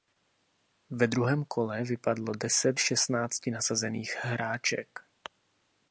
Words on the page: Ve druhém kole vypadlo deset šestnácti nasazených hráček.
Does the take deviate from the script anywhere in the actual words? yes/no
no